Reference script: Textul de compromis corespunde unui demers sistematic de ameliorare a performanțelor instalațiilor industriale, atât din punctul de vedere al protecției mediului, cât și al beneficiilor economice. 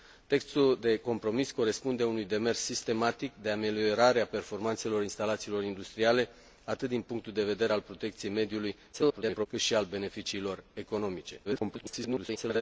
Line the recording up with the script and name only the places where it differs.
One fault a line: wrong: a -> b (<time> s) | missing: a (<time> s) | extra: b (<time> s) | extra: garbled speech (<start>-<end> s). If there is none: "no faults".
extra: garbled speech (8.9-9.5 s)
extra: garbled speech (11.4-12.6 s)